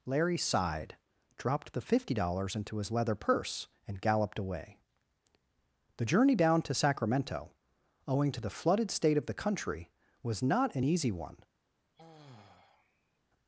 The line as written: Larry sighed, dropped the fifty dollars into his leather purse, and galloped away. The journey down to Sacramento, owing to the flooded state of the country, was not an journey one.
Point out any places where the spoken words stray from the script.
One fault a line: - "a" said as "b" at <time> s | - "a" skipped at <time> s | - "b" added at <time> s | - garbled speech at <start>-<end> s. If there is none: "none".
- "journey" said as "easy" at 10.8 s